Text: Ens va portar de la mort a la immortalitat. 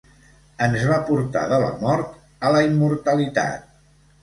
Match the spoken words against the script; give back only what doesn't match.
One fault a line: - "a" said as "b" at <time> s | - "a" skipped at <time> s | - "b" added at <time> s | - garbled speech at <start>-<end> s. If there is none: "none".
none